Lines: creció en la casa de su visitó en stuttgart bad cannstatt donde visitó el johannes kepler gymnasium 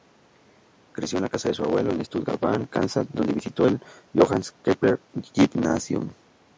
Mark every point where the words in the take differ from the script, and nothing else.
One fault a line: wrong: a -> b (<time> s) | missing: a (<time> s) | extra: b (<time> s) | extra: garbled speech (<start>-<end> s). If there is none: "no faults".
wrong: visitó -> abuelo (1.6 s)